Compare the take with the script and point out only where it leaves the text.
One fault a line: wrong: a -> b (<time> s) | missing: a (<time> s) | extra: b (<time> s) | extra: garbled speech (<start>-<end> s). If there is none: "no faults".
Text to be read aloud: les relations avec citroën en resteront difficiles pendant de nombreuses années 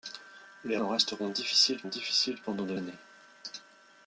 missing: relations avec citroën (0.8 s)
extra: difficiles (1.8 s)
missing: nombreuses (2.7 s)